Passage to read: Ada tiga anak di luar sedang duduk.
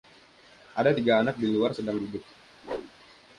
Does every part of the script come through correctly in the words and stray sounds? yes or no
no